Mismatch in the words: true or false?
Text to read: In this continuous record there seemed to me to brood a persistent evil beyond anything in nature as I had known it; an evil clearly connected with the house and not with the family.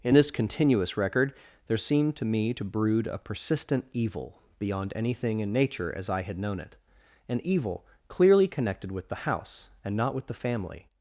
false